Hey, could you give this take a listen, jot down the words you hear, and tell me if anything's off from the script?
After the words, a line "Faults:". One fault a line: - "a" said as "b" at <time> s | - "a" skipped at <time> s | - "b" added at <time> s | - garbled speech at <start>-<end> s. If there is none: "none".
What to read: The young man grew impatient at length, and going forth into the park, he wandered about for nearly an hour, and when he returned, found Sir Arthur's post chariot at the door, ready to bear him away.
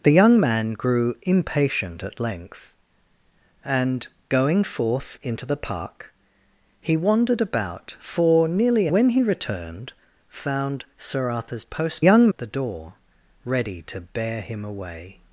The young man grew impatient at length, and going forth into the park, he wandered about for nearly when he returned, found Sir Arthur's post young at the door, ready to bear him away.
Faults:
- "an hour and" skipped at 8.9 s
- "chariot" said as "young" at 12.0 s